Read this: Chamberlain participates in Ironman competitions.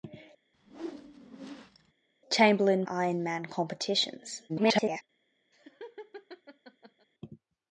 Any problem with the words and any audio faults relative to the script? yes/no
yes